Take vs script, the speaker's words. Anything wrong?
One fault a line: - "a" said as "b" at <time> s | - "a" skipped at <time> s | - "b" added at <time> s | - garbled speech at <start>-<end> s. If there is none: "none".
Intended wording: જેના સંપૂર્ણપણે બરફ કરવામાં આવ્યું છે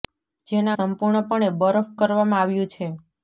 none